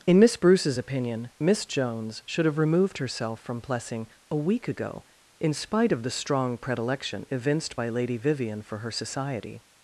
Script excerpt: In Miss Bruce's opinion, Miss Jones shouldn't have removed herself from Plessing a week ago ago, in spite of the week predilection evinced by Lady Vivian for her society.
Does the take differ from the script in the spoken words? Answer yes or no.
yes